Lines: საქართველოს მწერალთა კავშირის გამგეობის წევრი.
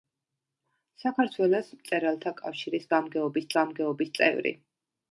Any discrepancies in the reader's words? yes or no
yes